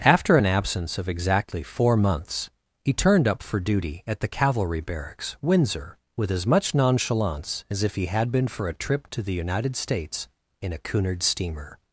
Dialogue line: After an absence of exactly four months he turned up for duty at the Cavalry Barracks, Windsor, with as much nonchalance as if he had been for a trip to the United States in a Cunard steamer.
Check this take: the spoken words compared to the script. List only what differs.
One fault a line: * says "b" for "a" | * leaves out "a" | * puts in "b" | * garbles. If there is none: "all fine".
all fine